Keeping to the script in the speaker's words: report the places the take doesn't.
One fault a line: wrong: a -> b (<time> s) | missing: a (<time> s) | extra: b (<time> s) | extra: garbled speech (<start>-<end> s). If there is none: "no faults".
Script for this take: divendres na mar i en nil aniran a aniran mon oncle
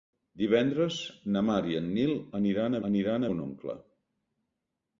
no faults